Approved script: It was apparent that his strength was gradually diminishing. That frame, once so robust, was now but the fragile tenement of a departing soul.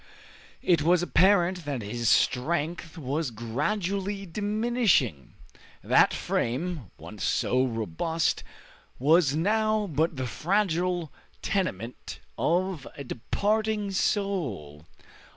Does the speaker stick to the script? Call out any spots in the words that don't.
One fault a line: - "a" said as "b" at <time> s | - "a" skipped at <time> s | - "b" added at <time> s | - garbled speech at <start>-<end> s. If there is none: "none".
none